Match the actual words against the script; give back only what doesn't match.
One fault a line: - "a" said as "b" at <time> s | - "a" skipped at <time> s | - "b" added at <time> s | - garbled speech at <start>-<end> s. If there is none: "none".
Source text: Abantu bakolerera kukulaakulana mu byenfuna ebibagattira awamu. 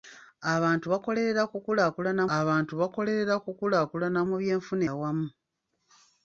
- "abantu bakolerera kukulaakulana" added at 2.4 s
- "ebibagattira" skipped at 4.8 s